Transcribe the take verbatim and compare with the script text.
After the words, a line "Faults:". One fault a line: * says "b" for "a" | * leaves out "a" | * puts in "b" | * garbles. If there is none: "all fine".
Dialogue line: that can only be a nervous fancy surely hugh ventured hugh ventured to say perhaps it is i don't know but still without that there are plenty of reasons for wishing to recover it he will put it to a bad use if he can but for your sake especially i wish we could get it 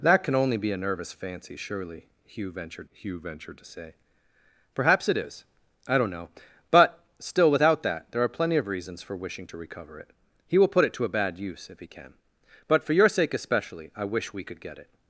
that can only be a nervous fancy surely hugh ventured hugh ventured to say perhaps it is i don't know but still without that there are plenty of reasons for wishing to recover it he will put it to a bad use if he can but for your sake especially i wish we could get it
Faults:
all fine